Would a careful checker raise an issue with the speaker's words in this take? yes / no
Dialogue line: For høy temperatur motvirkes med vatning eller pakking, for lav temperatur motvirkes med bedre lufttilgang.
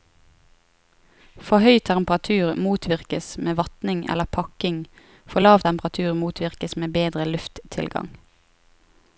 no